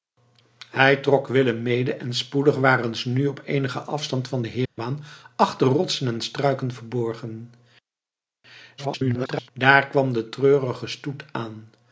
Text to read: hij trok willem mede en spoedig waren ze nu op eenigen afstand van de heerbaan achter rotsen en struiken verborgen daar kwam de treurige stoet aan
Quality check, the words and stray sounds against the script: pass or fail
fail